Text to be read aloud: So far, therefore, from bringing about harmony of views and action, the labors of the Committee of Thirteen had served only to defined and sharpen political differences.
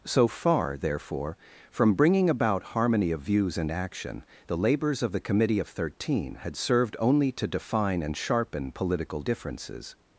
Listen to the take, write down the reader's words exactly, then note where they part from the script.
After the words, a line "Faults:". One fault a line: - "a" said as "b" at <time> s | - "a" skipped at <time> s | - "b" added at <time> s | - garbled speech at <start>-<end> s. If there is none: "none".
So far, therefore, from bringing about harmony of views and action, the labors of the Committee of Thirteen had served only to define and sharpen political differences.
Faults:
- "defined" said as "define" at 7.5 s